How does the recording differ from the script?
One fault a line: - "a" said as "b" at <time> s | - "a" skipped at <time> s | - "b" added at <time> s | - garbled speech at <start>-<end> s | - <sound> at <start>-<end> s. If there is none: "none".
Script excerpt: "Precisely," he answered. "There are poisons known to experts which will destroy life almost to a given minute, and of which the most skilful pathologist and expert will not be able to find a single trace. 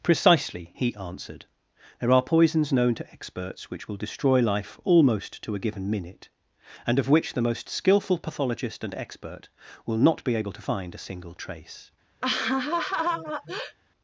- laugh at 12.2-13.8 s